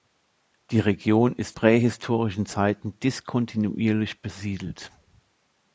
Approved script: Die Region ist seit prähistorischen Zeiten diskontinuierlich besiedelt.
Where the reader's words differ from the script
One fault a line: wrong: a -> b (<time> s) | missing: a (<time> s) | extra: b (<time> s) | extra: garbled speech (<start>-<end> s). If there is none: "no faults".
missing: seit (1.6 s)